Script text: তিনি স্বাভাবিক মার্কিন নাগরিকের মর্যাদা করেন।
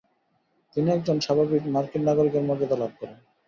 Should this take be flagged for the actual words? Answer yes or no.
yes